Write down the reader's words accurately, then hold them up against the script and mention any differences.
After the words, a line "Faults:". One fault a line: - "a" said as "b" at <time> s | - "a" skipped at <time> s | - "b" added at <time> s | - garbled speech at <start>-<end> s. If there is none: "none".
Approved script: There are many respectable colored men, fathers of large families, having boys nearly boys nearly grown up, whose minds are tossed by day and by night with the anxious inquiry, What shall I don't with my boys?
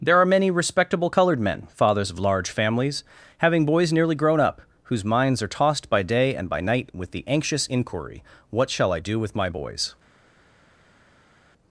There are many respectable colored men, fathers of large families, having boys nearly grown up, whose minds are tossed by day and by night with the anxious inquiry, What shall I do with my boys?
Faults:
- "boys nearly" skipped at 4.2 s
- "don't" said as "do" at 9.0 s